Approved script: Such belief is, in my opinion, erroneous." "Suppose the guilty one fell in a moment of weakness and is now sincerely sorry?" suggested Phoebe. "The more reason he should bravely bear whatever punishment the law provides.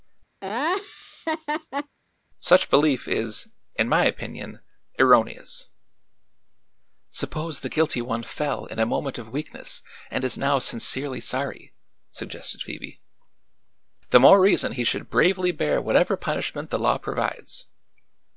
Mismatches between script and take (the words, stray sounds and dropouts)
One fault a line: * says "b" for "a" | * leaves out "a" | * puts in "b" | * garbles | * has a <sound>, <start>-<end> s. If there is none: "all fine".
* has a laugh, 0.4-2.0 s